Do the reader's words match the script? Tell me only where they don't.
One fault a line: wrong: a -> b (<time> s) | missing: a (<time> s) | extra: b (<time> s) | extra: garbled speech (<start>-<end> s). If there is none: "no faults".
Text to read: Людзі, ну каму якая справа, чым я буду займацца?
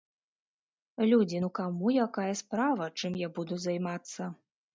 no faults